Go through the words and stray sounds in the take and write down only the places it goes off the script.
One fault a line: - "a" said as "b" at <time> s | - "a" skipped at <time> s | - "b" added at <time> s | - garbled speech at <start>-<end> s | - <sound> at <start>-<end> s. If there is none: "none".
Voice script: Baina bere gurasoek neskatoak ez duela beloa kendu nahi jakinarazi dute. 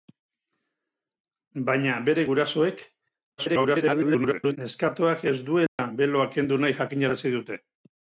- garbled speech at 3.4-4.6 s
- dropout at 5.7-5.8 s